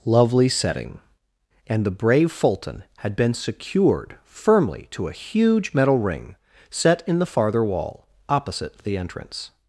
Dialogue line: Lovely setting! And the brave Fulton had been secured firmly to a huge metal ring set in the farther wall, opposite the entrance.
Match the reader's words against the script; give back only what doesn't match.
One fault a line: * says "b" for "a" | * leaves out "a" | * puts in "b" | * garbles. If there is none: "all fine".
all fine